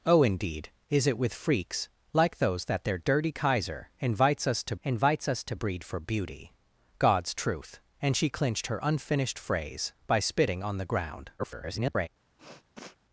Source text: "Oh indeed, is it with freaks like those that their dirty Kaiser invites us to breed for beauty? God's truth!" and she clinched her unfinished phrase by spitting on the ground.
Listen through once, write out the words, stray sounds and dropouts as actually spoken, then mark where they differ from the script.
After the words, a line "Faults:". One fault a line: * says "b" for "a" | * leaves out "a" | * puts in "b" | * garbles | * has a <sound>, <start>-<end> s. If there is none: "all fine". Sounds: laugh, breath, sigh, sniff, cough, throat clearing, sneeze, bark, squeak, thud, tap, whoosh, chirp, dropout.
"Oh indeed, is it with freaks like those that their dirty Kaiser invites us to invites us to breed for beauty? God's truth!" and she clinched her unfinished phrase by spitting on the ground. [garbled]
Faults:
* puts in "invites us to"
* garbles
* has a sniff, 12.4-13.0 s